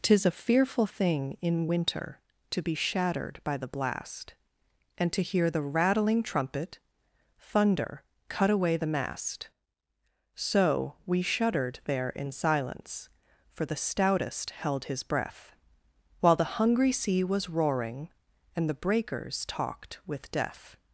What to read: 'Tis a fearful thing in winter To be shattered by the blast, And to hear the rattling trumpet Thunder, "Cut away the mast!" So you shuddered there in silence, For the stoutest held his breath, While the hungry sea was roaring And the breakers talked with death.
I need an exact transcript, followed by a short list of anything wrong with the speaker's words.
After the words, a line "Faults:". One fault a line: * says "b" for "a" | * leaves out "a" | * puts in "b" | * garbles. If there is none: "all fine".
'Tis a fearful thing in winter To be shattered by the blast, And to hear the rattling trumpet Thunder, "Cut away the mast!" So we shuddered there in silence, For the stoutest held his breath, While the hungry sea was roaring And the breakers talked with death.
Faults:
* says "we" for "you"